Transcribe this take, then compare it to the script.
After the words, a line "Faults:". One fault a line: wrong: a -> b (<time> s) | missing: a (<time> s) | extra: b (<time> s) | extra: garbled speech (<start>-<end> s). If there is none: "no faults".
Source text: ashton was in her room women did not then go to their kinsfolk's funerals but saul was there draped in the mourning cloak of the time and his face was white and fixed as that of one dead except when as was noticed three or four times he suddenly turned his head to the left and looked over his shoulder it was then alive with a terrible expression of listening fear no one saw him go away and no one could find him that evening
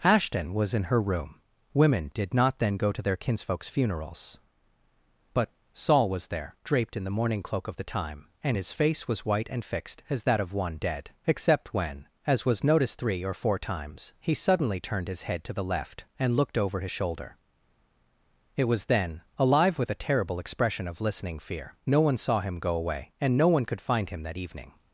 ashton was in her room women did not then go to their kinsfolk's funerals but saul was there draped in the mourning cloak of the time and his face was white and fixed as that of one dead except when as was noticed three or four times he suddenly turned his head to the left and looked over his shoulder it was then alive with a terrible expression of listening fear no one saw him go away and no one could find him that evening
Faults:
no faults